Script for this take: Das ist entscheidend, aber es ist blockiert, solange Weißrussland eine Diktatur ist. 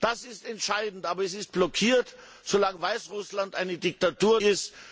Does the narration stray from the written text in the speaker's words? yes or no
no